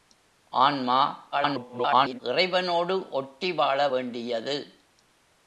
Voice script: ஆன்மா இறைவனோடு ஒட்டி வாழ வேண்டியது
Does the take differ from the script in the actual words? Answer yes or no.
yes